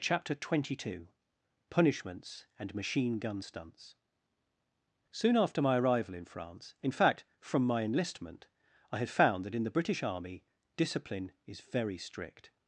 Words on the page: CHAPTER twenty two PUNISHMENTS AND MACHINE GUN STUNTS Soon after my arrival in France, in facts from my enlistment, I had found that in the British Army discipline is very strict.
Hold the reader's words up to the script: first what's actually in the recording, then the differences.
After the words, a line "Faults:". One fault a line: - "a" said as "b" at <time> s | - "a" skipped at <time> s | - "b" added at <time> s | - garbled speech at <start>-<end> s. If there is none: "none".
CHAPTER twenty two PUNISHMENTS AND MACHINE GUN STUNTS Soon after my arrival in France, in fact from my enlistment, I had found that in the British Army discipline is very strict.
Faults:
- "facts" said as "fact" at 6.9 s